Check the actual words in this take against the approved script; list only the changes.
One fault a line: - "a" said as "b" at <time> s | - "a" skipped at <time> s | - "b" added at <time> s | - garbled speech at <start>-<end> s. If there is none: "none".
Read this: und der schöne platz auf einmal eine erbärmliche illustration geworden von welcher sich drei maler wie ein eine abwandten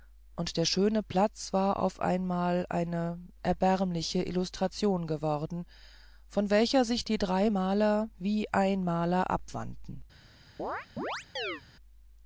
- "war" added at 1.5 s
- "die" added at 7.0 s
- "eine" said as "maler" at 8.8 s